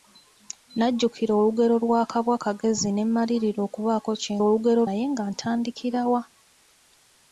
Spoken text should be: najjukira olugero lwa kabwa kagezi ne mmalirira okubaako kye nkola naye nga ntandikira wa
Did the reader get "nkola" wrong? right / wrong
wrong